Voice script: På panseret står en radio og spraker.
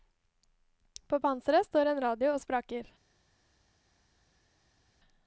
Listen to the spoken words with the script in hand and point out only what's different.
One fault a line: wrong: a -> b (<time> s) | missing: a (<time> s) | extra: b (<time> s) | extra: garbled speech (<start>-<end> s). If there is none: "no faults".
no faults